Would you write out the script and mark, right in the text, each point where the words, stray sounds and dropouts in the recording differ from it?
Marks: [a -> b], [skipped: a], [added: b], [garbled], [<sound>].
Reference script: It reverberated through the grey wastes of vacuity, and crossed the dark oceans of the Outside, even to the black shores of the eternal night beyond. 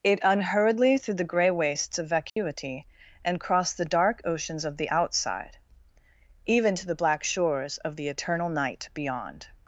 It [reverberated -> unhurriedly] through the grey wastes of vacuity, [dropout] and crossed the dark oceans of the Outside, even to the black shores of the eternal night beyond.